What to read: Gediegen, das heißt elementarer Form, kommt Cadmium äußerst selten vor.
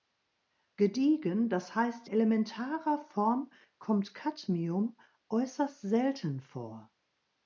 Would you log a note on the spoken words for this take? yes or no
no